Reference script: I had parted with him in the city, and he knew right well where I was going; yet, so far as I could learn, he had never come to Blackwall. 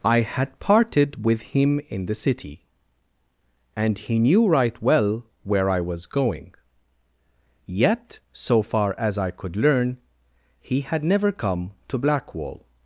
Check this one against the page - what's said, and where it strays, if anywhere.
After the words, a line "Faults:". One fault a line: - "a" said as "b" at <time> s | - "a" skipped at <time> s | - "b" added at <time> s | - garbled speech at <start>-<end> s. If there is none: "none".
I had parted with him in the city, and he knew right well where I was going; yet, so far as I could learn, he had never come to Blackwall.
Faults:
none